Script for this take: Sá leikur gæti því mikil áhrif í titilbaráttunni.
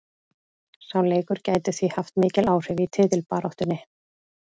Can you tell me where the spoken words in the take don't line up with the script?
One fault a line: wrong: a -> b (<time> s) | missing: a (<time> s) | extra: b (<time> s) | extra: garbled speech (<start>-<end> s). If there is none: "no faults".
extra: haft (2.0 s)